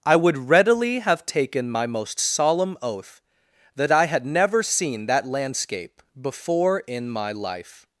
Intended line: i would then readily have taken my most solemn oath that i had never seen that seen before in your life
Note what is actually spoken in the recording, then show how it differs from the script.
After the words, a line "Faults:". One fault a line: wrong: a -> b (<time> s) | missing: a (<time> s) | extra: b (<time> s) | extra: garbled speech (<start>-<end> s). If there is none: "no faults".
i would readily have taken my most solemn oath that i had never seen that landscape before in my life
Faults:
missing: then (0.5 s)
wrong: seen -> landscape (5.3 s)
wrong: your -> my (7.1 s)